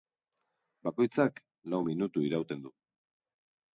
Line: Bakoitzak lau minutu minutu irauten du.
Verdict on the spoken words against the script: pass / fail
fail